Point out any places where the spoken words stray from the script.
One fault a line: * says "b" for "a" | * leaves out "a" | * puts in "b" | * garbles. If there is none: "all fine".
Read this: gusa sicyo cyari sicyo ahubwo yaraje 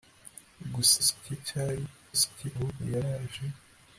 all fine